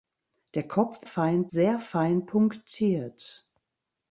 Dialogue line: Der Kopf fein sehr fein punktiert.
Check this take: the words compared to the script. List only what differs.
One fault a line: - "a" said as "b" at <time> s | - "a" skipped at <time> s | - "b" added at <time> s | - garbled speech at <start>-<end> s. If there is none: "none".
none